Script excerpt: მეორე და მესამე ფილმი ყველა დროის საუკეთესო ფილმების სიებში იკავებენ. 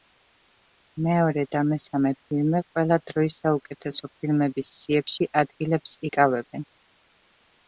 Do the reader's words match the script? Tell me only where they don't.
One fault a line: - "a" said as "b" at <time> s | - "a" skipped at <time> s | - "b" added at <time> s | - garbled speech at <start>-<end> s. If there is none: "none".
- "ადგილებს" added at 5.4 s